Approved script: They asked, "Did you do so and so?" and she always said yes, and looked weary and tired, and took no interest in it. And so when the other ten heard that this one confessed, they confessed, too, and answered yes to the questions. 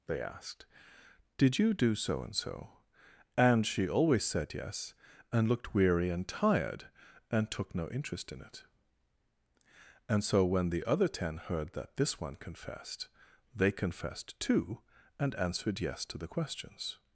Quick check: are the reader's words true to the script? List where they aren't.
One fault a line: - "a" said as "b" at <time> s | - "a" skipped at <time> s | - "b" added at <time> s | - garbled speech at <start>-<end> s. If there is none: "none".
none